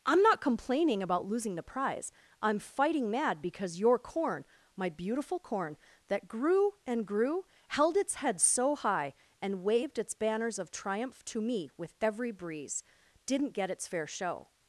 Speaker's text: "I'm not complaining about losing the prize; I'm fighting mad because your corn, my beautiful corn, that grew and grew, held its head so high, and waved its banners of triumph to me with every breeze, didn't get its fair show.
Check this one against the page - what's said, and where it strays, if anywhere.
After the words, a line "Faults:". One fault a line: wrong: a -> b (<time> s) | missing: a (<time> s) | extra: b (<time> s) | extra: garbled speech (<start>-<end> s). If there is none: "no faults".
"I'm not complaining about losing the prize; I'm fighting mad because your corn, my beautiful corn, that grew and grew, held its head so high, and waved its banners of triumph to me with every breeze, didn't get its fair show.
Faults:
no faults